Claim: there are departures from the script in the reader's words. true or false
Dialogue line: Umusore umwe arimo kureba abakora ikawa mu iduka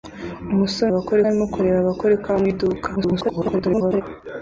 true